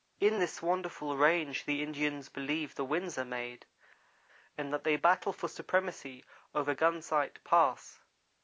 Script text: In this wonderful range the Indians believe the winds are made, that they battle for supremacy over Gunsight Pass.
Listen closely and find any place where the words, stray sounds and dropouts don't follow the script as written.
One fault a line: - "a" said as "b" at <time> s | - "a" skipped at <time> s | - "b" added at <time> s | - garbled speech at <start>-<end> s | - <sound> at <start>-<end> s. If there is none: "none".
- "and" added at 4.6 s